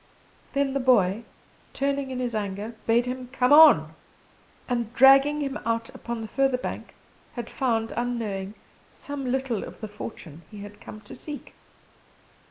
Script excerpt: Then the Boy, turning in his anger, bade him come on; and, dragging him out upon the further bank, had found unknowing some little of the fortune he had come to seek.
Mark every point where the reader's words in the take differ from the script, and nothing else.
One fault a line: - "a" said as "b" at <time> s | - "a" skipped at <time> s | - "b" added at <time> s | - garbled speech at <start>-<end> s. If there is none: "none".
none